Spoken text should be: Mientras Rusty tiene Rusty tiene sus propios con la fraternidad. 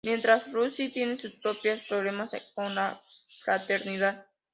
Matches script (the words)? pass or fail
fail